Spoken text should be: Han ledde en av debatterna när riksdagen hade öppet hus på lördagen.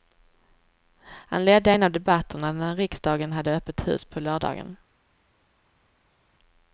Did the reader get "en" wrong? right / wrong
right